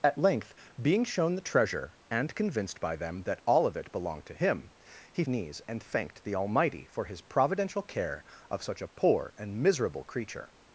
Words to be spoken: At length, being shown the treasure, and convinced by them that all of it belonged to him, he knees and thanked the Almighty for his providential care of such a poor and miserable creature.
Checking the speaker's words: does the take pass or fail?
pass